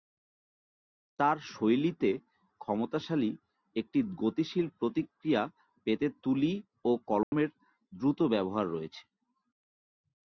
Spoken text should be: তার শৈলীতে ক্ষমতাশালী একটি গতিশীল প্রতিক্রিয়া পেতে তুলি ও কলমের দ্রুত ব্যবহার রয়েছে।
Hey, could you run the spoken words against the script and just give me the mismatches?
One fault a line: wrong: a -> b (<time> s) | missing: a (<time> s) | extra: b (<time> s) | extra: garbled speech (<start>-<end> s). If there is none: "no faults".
no faults